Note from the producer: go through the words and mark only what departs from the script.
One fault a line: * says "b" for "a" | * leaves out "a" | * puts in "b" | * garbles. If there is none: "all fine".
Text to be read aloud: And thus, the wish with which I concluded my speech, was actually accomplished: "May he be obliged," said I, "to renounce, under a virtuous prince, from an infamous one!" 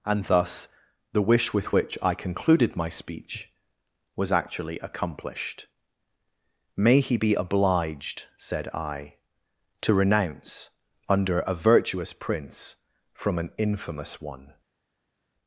all fine